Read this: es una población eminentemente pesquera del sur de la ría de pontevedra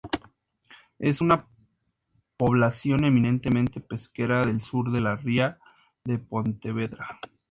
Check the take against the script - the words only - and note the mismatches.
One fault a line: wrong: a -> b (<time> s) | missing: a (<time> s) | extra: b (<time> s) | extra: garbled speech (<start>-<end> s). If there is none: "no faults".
no faults